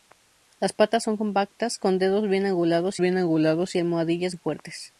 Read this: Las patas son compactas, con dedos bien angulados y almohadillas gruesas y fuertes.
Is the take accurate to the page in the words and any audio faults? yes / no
no